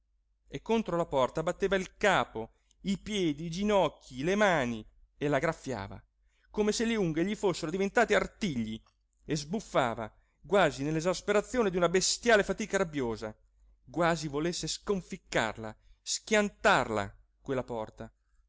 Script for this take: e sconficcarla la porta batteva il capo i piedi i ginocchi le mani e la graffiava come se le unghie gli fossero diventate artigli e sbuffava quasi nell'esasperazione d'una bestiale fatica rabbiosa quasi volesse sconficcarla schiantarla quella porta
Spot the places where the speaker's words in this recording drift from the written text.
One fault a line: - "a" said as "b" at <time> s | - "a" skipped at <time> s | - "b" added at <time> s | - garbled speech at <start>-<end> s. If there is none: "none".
- "sconficcarla" said as "contro" at 0.6 s